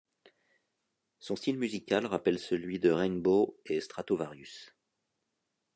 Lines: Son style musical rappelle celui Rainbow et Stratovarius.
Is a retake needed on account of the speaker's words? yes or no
yes